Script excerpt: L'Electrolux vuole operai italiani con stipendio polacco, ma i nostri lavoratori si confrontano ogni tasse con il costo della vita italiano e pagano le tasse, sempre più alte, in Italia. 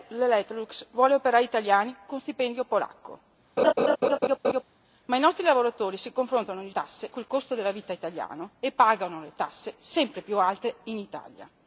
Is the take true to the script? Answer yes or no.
yes